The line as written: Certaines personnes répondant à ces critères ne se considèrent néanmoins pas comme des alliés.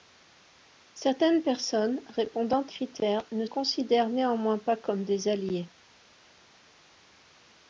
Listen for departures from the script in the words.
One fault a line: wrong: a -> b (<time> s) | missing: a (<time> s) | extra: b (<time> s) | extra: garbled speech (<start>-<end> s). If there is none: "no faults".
missing: à ces (2.6 s)
missing: se (3.5 s)